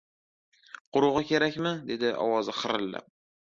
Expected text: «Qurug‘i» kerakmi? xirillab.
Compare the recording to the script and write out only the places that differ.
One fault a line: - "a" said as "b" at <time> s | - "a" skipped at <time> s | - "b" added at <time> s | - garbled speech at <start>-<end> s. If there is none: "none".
- "dedi ovozi" added at 1.9 s